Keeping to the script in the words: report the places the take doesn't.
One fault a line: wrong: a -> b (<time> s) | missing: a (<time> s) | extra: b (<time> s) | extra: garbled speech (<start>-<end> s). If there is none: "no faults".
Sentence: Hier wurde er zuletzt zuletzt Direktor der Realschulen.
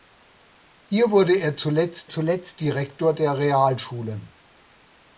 no faults